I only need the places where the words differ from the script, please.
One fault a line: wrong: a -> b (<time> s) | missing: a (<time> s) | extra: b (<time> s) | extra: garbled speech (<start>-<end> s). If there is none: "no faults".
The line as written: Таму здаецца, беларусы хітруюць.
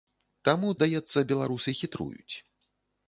no faults